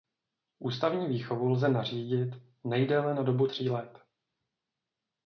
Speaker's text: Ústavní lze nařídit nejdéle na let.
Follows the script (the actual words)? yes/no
no